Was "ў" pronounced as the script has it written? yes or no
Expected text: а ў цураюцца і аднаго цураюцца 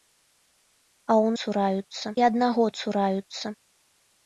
yes